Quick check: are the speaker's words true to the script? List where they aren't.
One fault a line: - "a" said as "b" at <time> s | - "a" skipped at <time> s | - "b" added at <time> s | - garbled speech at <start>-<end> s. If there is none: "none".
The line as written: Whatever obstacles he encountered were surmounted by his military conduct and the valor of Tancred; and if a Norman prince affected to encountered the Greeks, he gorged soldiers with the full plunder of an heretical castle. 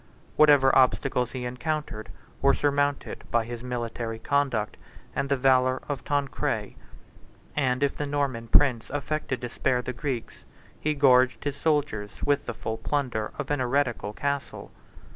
- "a" said as "the" at 8.0 s
- "encountered" said as "spare" at 9.5 s
- "his" added at 11.4 s